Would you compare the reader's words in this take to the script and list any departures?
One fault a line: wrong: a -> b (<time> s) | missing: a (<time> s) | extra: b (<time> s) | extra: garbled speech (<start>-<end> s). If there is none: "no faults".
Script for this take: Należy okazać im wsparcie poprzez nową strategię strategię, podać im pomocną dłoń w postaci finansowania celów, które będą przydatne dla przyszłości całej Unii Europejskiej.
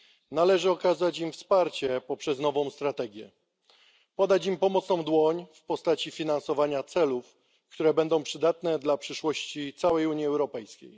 missing: strategię (3.3 s)